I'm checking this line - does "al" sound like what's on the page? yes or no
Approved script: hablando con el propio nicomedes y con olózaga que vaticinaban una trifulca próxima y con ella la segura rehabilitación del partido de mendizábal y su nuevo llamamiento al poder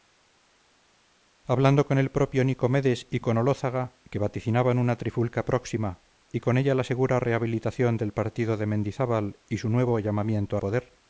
no